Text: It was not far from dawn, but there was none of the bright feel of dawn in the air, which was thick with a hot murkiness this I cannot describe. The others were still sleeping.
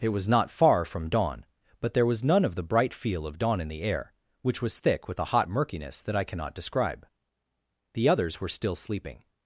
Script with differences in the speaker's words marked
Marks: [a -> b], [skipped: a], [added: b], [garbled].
It was not far from dawn, but there was none of the bright feel of dawn in the air, which was thick with a hot murkiness [this -> that] I cannot describe. The others were still sleeping.